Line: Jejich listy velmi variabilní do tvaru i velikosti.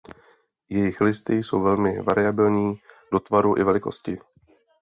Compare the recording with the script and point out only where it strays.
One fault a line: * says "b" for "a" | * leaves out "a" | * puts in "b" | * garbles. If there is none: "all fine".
* puts in "jsou"